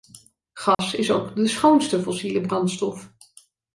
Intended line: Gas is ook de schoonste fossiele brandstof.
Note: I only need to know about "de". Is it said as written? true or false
true